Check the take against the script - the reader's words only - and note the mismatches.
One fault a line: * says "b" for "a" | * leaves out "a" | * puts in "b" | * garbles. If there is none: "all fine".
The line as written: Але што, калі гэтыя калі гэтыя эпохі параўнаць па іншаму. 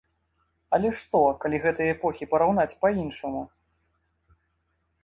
* leaves out "калі гэтыя"